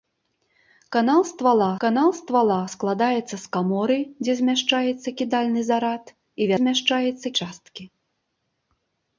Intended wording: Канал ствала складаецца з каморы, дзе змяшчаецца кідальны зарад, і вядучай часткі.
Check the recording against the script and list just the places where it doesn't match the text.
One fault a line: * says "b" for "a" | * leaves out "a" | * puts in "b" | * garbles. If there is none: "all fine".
* puts in "канал ствала"
* says "змяшчаецца" for "вядучай"